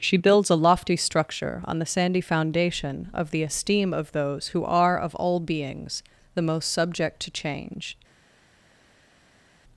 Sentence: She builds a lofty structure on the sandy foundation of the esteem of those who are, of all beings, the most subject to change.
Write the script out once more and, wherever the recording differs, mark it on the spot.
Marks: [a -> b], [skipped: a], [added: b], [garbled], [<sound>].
She builds a lofty structure on the sandy foundation of the esteem of those who are, of all beings, the most subject to change.